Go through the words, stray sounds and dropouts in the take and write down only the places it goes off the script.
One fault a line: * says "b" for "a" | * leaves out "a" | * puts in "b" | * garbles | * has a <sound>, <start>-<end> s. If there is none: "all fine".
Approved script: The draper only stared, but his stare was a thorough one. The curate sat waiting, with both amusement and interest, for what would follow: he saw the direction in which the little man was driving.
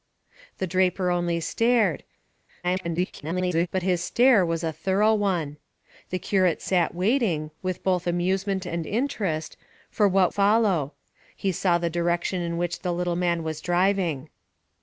* garbles
* leaves out "would"